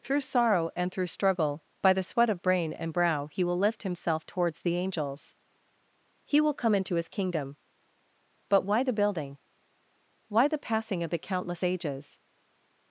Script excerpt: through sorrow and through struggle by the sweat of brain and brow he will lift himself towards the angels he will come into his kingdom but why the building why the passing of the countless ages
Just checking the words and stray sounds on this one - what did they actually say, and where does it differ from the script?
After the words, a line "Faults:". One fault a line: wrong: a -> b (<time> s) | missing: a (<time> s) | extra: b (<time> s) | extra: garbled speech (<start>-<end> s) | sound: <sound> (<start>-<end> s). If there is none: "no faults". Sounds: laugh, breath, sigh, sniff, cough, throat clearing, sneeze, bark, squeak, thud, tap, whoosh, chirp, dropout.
through sorrow and through struggle by the sweat of brain and brow he will lift himself towards the angels he will come into his kingdom but why the building why the passing of the countless ages
Faults:
no faults